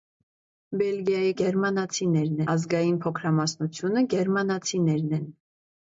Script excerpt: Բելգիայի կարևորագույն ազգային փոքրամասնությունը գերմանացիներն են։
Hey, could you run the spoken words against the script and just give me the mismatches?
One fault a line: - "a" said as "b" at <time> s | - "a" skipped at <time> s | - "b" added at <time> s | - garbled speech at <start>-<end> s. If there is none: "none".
- "կարևորագույն" said as "գերմանացիներն" at 1.4 s